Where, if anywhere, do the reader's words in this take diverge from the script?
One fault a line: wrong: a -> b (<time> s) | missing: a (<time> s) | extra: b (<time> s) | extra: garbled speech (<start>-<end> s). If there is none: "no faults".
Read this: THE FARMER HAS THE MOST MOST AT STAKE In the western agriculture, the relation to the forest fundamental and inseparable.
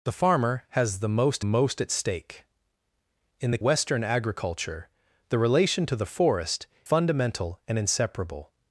no faults